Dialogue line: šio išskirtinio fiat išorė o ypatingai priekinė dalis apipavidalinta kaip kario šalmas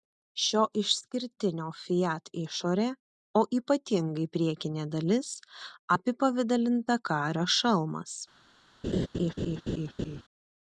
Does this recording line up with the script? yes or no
no